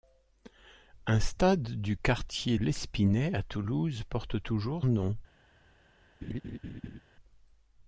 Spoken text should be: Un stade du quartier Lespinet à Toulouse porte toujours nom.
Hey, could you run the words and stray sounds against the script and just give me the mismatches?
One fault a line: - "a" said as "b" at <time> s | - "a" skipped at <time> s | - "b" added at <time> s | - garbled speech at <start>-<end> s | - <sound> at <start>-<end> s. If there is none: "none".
- laugh at 6.2-7.0 s